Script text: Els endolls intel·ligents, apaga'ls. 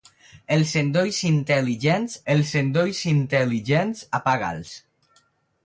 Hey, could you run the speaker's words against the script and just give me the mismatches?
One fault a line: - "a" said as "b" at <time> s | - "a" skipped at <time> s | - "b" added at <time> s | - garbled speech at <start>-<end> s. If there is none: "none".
- "els endolls intel·ligents" added at 2.3 s